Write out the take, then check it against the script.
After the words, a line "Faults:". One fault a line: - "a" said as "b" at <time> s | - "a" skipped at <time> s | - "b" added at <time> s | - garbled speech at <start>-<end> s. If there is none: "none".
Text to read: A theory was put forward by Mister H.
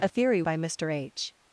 A theory by Mister H.
Faults:
- "was put forward" skipped at 0.4 s